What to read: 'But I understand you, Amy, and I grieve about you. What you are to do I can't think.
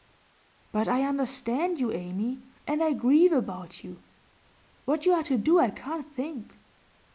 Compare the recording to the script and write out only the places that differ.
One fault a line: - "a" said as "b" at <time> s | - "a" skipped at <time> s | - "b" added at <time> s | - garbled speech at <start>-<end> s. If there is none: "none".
none